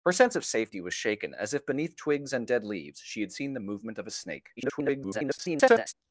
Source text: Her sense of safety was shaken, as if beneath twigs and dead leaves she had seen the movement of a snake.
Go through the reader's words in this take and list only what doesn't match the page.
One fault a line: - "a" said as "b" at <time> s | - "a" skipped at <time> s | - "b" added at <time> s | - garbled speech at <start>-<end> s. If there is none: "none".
- garbled speech at 4.6-5.9 s